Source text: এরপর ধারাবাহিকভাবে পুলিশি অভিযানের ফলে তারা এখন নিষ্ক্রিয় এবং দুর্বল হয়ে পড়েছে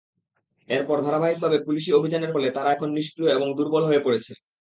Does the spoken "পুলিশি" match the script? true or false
true